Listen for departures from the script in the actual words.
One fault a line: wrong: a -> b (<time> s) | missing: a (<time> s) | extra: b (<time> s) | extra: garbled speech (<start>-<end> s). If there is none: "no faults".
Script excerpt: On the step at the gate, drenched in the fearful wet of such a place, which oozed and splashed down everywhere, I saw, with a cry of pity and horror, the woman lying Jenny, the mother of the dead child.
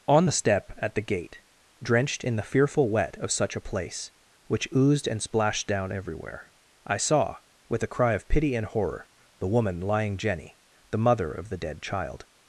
no faults